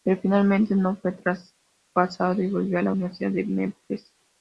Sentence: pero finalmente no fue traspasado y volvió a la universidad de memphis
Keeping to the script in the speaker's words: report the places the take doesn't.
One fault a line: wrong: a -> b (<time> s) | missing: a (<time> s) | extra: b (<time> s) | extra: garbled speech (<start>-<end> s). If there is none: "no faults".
no faults